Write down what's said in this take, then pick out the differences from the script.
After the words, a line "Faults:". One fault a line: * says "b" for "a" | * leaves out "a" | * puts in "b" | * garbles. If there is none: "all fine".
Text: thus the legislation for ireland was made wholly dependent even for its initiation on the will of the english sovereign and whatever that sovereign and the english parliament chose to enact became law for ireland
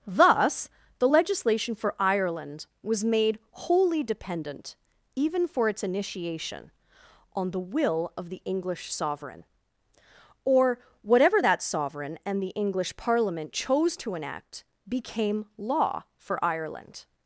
thus the legislation for ireland was made wholly dependent even for its initiation on the will of the english sovereign or whatever that sovereign and the english parliament chose to enact became law for ireland
Faults:
* says "or" for "and"